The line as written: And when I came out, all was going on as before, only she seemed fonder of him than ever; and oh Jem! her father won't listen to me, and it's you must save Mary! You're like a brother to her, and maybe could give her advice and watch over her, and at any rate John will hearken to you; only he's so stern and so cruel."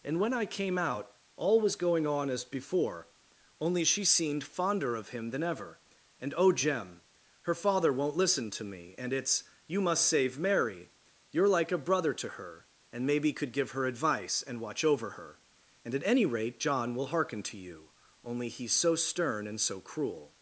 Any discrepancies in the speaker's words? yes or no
no